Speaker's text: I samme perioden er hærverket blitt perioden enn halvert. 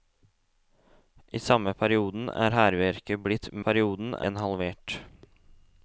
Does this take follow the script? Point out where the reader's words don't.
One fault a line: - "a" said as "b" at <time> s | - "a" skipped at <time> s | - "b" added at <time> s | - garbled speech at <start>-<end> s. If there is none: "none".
none